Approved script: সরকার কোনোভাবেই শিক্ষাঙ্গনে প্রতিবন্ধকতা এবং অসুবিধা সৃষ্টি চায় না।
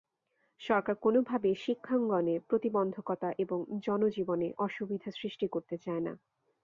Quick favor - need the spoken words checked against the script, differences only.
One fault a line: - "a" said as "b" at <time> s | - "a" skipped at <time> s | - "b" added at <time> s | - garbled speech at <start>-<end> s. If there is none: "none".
- "জনজীবনে" added at 3.8 s
- "করতে" added at 5.5 s